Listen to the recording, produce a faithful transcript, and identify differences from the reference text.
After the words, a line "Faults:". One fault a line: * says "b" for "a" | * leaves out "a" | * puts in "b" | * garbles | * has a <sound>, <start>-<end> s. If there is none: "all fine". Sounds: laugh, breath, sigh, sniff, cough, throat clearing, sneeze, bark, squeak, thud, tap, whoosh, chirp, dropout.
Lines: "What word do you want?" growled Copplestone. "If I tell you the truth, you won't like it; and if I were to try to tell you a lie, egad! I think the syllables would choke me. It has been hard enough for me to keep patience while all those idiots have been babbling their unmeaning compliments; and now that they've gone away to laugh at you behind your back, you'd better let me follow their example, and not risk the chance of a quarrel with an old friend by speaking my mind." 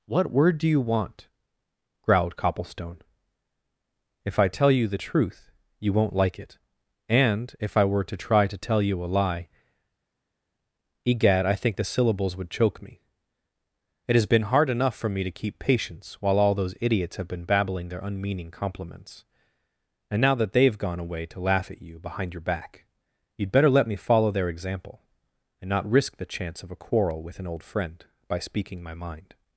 "What word do you want?" growled Copplestone. "If I tell you the truth, you won't like it; and if I were to try to tell you a lie, egad! I think the syllables would choke me. It has been hard enough for me to keep patience while all those idiots have been babbling their unmeaning compliments; and now that they've gone away to laugh at you behind your back, you'd better let me follow their example, and not risk the chance of a quarrel with an old friend by speaking my mind."
Faults:
all fine